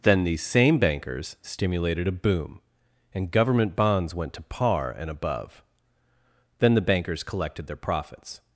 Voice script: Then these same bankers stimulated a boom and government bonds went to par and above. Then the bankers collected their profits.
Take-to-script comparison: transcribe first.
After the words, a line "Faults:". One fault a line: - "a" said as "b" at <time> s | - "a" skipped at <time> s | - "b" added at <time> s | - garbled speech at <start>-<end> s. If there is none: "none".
Then these same bankers stimulated a boom and government bonds went to par and above. Then the bankers collected their profits.
Faults:
none